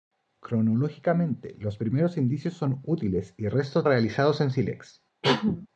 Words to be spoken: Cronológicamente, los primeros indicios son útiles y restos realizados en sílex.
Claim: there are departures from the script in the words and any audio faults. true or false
true